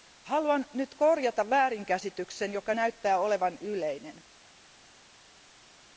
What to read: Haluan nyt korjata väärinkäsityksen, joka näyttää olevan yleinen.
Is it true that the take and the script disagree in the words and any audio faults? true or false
false